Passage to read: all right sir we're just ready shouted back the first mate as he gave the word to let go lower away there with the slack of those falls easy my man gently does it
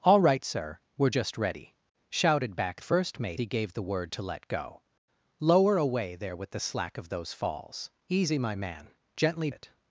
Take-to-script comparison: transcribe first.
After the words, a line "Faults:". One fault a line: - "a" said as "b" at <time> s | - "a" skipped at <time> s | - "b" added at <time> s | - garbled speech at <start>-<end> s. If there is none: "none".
all right sir we're just ready shouted back first mate he gave the word to let go lower away there with the slack of those falls easy my man gently it
Faults:
- "the" skipped at 2.8 s
- "as" skipped at 3.4 s
- "does" skipped at 9.5 s